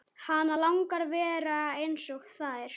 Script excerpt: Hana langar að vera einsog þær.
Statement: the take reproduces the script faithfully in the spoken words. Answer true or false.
true